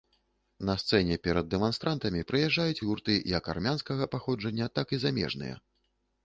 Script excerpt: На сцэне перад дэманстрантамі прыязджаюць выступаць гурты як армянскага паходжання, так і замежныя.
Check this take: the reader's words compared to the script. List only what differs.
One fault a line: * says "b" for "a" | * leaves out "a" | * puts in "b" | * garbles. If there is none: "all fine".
* leaves out "выступаць"